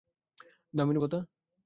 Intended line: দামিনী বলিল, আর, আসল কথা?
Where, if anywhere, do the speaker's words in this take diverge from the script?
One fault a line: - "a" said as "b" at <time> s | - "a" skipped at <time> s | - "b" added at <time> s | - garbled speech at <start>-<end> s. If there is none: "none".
- "বলিল আর আসল" skipped at 1.0 s